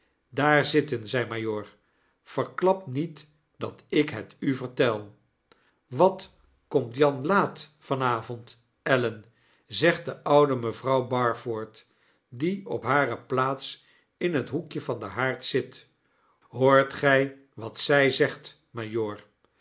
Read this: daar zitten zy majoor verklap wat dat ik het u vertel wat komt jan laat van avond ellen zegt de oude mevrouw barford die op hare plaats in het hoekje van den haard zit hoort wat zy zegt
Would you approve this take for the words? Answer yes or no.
no